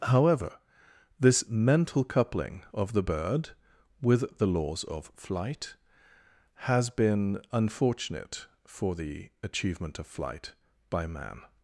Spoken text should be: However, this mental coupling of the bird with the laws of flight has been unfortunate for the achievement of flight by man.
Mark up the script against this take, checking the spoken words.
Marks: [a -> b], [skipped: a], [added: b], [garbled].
However, this mental coupling of the bird with the laws of flight has been unfortunate for the achievement of flight by man.